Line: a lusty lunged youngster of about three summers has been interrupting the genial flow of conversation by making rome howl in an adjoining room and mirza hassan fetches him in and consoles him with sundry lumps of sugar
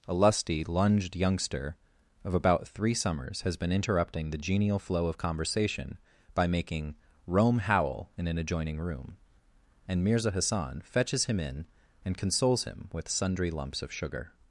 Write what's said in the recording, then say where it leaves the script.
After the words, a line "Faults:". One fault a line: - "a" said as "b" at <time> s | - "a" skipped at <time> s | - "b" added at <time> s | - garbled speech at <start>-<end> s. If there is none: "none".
a lusty lunged youngster of about three summers has been interrupting the genial flow of conversation by making rome howl in an adjoining room and mirza hassan fetches him in and consoles him with sundry lumps of sugar
Faults:
none